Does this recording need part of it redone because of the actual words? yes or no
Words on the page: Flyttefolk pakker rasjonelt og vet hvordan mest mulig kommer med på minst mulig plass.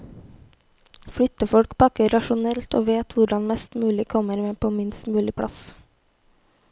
no